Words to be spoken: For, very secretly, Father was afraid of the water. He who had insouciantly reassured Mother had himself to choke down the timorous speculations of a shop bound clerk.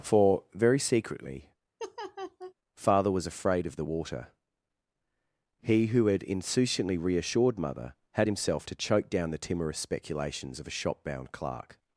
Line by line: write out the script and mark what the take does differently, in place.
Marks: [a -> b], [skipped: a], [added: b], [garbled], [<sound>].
For, very secretly, [laugh] Father was afraid of the water. He who had insouciantly reassured Mother had himself to choke down the timorous speculations of a shop bound clerk.